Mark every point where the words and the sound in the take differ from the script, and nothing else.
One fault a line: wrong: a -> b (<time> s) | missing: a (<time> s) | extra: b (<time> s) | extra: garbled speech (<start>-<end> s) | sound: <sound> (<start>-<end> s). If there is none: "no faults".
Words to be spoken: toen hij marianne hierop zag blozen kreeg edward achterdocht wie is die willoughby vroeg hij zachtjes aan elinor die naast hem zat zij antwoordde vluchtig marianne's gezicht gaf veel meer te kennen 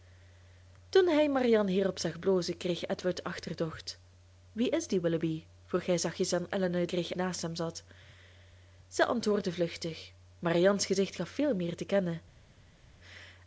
wrong: die -> kreeg (6.9 s)